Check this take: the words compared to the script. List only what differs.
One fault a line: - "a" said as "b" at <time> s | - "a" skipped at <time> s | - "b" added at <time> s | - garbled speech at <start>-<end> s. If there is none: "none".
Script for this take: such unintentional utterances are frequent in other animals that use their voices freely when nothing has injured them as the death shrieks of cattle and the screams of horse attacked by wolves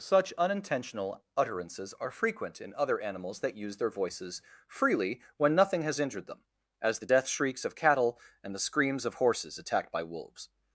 - "horse" said as "horses" at 9.2 s